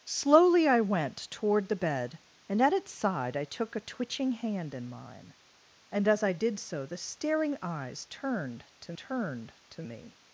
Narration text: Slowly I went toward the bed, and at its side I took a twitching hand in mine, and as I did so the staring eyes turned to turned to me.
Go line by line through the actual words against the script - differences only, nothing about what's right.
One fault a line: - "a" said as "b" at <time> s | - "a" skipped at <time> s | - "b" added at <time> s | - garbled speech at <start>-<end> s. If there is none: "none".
none